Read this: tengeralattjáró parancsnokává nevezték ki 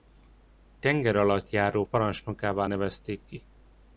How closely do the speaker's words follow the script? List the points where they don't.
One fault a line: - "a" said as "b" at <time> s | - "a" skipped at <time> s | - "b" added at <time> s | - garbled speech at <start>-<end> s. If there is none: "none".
none